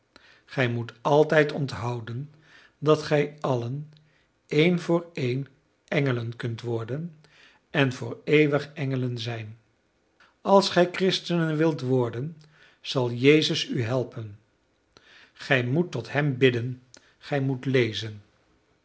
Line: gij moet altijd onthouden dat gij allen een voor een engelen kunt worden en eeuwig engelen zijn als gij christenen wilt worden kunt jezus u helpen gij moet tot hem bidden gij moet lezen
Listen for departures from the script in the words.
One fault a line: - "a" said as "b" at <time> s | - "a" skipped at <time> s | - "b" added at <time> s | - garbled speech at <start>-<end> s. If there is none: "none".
- "voor" added at 7.9 s
- "kunt" said as "zal" at 12.8 s